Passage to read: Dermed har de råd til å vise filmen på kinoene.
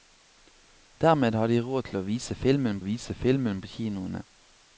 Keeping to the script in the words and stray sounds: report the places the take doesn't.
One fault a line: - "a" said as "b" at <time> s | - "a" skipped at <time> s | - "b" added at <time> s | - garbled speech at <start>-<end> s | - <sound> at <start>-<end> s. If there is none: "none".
- "vise filmen" added at 2.8 s